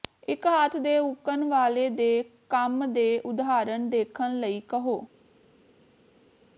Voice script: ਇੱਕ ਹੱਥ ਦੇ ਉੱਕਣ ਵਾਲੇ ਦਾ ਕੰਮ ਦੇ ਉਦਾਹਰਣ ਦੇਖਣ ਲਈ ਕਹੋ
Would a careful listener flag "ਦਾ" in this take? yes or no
yes